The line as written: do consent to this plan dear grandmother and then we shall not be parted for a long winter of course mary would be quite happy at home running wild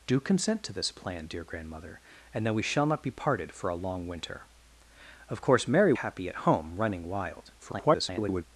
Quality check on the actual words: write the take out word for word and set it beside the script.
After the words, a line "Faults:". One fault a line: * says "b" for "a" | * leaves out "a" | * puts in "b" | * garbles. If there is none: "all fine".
do consent to this plan dear grandmother and then we shall not be parted for a long winter of course mary happy at home running wild [garbled]
Faults:
* leaves out "would be quite"
* garbles